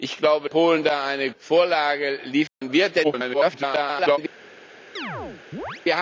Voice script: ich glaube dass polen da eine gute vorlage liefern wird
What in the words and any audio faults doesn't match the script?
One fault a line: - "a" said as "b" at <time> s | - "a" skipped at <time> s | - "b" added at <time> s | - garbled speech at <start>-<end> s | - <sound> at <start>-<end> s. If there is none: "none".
- "dass" skipped at 0.5 s
- "gute" skipped at 1.3 s
- dropout at 2.5-2.6 s
- garbled speech at 3.0-4.2 s
- chirp at 5.0-5.8 s